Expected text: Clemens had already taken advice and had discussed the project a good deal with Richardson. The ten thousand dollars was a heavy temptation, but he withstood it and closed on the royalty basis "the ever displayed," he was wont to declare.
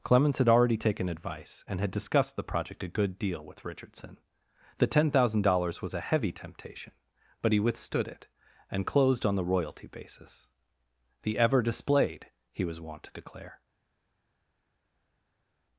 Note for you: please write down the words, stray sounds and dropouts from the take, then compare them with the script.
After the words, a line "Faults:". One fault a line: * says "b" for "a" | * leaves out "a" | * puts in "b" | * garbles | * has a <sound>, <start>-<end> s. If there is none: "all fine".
Clemens had already taken advice and had discussed the project a good deal with Richardson. The ten thousand dollars was a heavy temptation, but he withstood it and closed on the royalty basis "the ever displayed," he was wont to declare.
Faults:
all fine